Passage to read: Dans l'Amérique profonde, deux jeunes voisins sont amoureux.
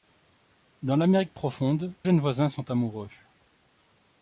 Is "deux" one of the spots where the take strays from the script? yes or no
yes